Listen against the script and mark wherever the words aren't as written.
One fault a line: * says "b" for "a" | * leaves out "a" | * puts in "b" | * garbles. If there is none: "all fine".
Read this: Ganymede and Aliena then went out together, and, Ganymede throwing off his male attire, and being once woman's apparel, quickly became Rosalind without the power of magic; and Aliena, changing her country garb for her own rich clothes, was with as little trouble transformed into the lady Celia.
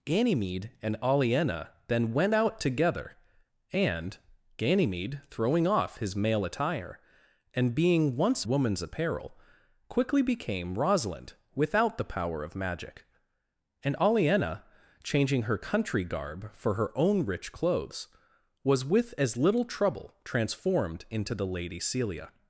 all fine